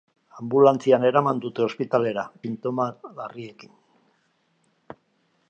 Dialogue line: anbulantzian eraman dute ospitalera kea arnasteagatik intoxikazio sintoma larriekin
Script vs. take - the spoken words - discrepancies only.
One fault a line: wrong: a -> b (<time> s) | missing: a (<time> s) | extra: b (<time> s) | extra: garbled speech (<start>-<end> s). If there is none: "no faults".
missing: kea arnasteagatik intoxikazio (2.2 s)